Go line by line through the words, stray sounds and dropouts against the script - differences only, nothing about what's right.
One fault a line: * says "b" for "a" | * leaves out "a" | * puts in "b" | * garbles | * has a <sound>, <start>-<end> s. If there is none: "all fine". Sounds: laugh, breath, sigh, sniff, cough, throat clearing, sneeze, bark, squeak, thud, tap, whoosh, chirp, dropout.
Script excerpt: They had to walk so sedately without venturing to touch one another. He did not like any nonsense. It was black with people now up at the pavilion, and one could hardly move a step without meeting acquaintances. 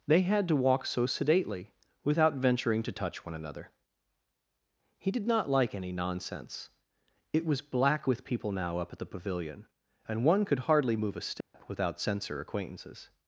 * has a dropout, 11.4-11.5 s
* says "censor" for "meeting"